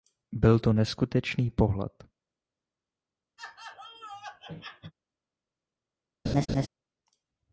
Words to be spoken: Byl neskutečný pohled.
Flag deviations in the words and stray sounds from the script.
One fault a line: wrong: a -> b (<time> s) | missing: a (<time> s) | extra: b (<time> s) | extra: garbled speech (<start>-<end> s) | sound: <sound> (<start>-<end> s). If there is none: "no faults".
extra: to (0.6 s)
sound: laugh (3.4-4.9 s)
sound: laugh (6.3-6.7 s)